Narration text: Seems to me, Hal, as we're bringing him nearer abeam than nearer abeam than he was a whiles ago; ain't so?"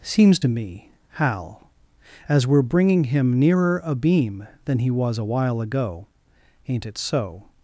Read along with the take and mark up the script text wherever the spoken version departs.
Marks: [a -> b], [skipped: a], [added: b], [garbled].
Seems to me, Hal, as we're bringing him nearer abeam than [skipped: nearer abeam than] he was a [whiles -> while] ago; ain't [added: it] so?"